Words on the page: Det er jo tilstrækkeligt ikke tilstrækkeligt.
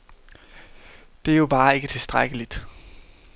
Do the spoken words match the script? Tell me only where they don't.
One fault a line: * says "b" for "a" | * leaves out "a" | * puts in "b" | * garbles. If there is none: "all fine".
* says "bare" for "tilstrækkeligt"